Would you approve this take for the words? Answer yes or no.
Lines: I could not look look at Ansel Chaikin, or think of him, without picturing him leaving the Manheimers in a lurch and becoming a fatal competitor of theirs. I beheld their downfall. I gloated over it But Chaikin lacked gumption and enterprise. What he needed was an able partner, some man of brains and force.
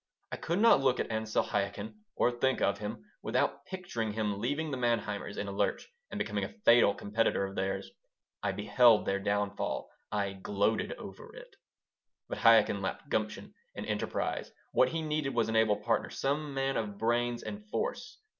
no